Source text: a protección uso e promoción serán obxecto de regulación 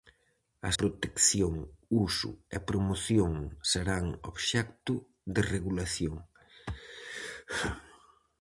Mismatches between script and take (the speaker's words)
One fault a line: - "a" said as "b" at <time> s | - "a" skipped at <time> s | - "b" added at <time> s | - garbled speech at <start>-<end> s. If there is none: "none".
none